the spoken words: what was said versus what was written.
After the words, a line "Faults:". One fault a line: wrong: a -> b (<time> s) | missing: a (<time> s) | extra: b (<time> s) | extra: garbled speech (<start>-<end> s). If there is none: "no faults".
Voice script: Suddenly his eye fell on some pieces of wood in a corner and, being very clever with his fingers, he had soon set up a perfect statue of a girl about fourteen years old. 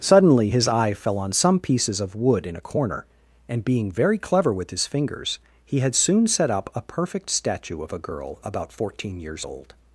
Suddenly his eye fell on some pieces of wood in a corner and, being very clever with his fingers, he had soon set up a perfect statue of a girl about fourteen years old.
Faults:
no faults